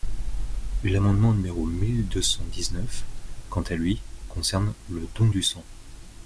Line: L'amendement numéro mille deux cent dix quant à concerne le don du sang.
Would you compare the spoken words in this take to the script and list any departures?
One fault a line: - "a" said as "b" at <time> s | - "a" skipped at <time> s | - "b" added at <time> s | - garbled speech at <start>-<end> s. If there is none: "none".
- "neuf" added at 2.7 s
- "lui" added at 3.8 s